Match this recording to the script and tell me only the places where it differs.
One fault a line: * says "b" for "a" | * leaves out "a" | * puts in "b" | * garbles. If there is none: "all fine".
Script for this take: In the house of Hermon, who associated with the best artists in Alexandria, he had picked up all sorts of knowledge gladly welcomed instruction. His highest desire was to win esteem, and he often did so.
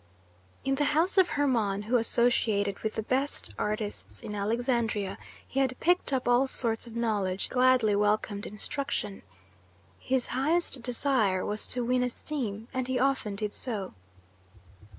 all fine